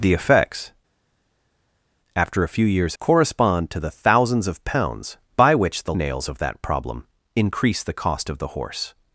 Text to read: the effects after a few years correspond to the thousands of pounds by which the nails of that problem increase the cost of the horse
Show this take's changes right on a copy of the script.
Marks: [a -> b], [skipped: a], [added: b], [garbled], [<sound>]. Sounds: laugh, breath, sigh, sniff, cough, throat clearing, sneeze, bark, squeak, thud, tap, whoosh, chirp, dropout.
the effects after a few years correspond to the thousands of pounds by which the nails of that problem increase the cost of the horse